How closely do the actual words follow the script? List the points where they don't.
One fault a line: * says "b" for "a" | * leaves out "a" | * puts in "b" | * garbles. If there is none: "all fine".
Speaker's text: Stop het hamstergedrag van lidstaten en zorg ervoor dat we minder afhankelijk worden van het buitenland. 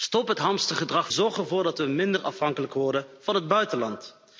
* leaves out "van lidstaten en"